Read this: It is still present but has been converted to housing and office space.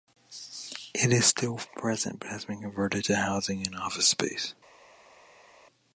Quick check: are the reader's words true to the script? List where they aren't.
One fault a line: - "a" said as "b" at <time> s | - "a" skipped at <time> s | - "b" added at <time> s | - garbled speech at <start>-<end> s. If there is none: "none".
none